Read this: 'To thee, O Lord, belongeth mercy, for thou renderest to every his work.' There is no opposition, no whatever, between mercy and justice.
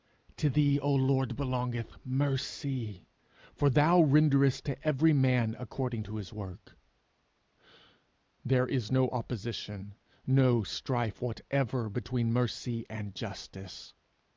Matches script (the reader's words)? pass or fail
fail